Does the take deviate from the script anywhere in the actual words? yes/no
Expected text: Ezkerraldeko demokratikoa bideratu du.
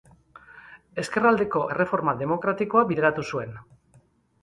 yes